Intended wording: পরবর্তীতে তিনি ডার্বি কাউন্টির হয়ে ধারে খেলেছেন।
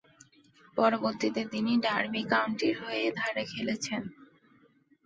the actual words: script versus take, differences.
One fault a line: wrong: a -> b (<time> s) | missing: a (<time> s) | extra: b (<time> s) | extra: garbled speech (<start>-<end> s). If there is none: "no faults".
no faults